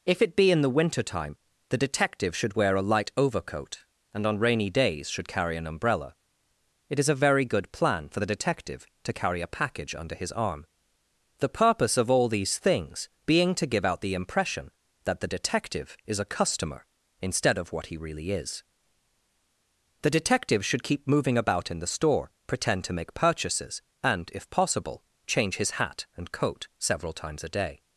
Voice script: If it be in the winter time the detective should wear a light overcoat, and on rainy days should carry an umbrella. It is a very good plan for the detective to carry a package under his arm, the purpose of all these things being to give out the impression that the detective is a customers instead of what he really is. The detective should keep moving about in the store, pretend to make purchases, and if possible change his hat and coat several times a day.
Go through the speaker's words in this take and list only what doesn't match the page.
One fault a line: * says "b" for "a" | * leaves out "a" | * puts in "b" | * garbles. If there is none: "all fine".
* says "customer" for "customers"